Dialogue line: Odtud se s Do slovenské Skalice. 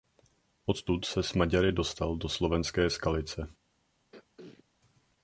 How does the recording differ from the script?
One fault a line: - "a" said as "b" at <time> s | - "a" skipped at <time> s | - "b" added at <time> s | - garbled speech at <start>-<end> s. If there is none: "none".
- "Maďary dostal" added at 1.3 s